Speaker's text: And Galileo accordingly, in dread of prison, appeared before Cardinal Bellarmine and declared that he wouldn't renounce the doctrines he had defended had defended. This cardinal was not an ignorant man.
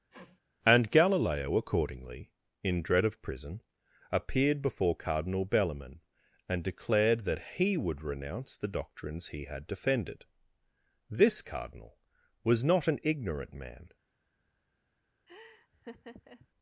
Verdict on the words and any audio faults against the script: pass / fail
fail